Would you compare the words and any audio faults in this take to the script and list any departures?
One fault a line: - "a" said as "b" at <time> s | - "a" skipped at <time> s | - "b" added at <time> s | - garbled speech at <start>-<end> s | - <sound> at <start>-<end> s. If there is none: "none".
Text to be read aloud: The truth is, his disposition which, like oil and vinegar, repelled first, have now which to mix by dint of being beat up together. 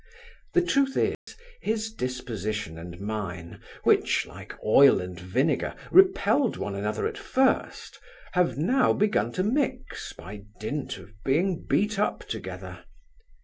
- dropout at 1.1-1.3 s
- "and mine" added at 2.8 s
- "one another at" added at 6.6 s
- "which" said as "begun" at 8.9 s